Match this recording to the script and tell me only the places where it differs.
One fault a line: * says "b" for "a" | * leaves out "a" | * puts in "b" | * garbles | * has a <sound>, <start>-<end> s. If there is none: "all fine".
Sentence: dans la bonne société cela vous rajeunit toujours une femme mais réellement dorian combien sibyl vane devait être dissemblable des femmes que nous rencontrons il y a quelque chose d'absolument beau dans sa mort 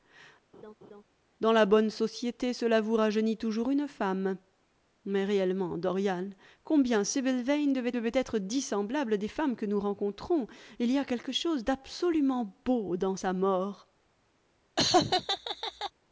* has a laugh, 0.5-1.0 s
* puts in "devait"
* has a laugh, 14.8-15.9 s